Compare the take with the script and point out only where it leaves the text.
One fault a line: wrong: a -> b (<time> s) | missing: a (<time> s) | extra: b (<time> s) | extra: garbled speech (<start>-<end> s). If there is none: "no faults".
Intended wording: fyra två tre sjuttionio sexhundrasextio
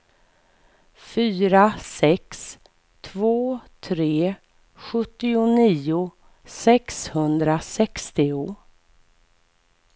extra: sex (1.8 s)